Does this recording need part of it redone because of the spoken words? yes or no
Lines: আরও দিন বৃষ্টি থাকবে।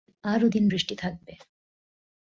no